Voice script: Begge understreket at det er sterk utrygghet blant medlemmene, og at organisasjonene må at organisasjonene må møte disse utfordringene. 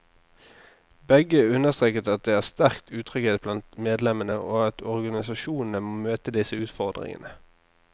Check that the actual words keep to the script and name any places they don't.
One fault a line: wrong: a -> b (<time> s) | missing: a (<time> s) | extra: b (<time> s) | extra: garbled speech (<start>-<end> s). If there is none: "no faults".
missing: at organisasjonene må (6.0 s)